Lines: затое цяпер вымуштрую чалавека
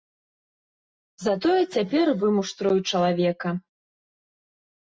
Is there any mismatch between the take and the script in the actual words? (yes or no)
no